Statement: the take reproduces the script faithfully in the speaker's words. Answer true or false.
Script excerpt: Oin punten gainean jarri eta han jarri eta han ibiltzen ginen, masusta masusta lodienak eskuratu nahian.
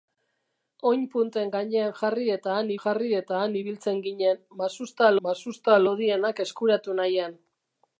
true